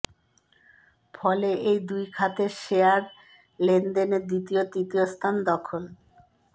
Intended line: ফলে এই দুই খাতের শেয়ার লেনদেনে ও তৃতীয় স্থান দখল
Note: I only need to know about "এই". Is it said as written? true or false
true